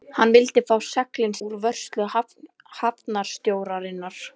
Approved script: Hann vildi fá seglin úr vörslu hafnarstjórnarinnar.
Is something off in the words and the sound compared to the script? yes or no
no